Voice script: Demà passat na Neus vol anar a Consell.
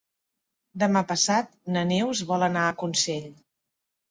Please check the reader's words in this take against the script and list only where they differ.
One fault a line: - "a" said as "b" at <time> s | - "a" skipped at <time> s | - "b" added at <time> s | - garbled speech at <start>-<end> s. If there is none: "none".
none